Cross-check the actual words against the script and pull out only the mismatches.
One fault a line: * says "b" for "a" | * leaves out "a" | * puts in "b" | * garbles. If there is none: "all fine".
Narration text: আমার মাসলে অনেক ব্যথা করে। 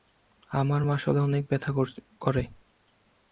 all fine